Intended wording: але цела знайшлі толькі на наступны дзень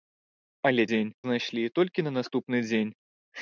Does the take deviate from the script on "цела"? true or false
true